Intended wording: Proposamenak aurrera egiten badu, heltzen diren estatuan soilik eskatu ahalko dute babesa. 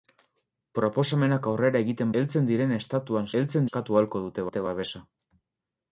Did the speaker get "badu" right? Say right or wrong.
wrong